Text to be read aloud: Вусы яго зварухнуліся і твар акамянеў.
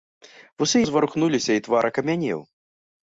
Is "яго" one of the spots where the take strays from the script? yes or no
yes